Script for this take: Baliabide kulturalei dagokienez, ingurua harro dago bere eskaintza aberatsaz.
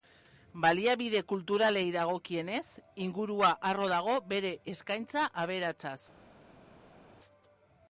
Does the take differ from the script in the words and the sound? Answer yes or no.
no